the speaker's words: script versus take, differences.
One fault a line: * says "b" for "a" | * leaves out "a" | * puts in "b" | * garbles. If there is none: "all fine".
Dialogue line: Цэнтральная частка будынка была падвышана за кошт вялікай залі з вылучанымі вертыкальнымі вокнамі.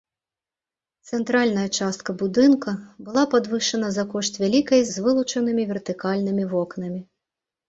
* leaves out "залі"